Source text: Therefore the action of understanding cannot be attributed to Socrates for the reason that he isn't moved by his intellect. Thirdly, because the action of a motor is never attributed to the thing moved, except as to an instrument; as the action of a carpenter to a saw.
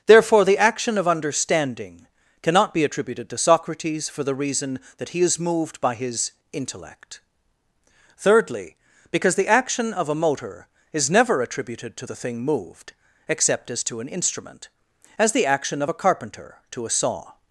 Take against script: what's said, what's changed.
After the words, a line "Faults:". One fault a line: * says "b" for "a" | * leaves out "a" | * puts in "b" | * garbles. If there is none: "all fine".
Therefore the action of understanding cannot be attributed to Socrates for the reason that he is moved by his intellect. Thirdly, because the action of a motor is never attributed to the thing moved, except as to an instrument; as the action of a carpenter to a saw.
Faults:
* says "is" for "isn't"